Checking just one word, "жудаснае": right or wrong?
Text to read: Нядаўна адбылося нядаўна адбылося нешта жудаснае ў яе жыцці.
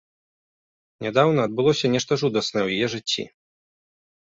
right